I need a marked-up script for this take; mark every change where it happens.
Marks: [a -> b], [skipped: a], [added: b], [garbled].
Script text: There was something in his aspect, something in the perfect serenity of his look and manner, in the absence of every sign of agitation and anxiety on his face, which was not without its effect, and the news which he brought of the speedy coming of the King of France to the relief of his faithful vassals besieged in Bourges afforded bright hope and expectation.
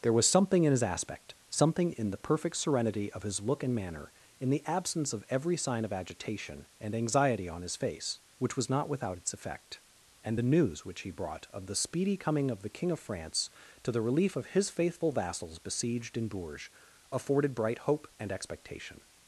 There was something in his aspect, something in the perfect serenity of his look and manner, in the absence of every sign of agitation and anxiety on his face, which was not without its effect, and the news which he brought of the speedy coming of the King of France to the relief of his faithful vassals besieged in Bourges afforded bright hope and expectation.